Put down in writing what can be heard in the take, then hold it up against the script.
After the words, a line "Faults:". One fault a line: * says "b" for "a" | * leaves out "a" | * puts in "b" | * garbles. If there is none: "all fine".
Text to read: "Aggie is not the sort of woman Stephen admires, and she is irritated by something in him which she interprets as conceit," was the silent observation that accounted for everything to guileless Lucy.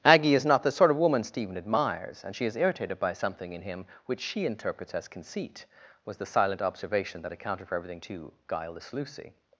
"Aggie is not the sort of woman Stephen admires, and she is irritated by something in him which she interprets as conceit," was the silent observation that accounted for everything to guileless Lucy.
Faults:
all fine